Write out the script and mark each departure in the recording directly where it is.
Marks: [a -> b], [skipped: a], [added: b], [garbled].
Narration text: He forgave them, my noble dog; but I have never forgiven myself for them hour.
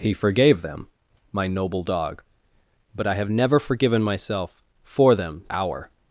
He forgave them, my noble dog; but I have never forgiven myself for them hour.